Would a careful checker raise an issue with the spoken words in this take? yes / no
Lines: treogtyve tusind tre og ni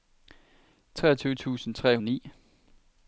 no